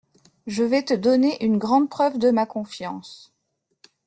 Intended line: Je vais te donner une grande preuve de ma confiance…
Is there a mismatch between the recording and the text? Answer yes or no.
no